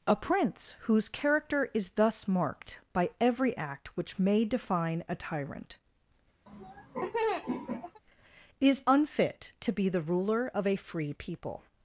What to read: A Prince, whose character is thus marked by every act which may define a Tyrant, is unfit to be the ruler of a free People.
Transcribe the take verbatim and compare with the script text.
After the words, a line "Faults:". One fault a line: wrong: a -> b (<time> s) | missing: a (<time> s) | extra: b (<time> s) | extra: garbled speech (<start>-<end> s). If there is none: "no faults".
A Prince, whose character is thus marked by every act which may define a Tyrant, is unfit to be the ruler of a free People.
Faults:
no faults